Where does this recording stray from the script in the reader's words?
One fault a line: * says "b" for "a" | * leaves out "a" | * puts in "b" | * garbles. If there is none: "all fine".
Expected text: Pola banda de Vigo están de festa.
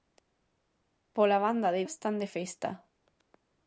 * leaves out "Vigo"